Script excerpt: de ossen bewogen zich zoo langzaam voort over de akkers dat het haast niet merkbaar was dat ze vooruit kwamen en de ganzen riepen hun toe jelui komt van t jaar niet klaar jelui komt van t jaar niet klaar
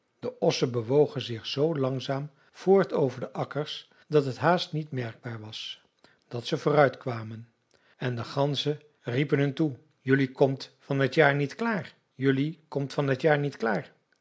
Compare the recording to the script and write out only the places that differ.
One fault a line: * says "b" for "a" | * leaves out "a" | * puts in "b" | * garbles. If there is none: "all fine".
all fine